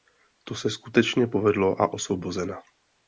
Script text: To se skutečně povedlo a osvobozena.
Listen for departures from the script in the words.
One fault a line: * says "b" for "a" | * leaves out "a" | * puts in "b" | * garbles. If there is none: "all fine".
all fine